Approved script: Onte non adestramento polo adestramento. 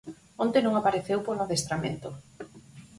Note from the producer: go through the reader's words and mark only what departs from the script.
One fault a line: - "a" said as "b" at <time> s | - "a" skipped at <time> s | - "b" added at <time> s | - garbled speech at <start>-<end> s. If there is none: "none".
- "adestramento" said as "apareceu" at 0.8 s